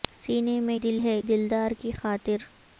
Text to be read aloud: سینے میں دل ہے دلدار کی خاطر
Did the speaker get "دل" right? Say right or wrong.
right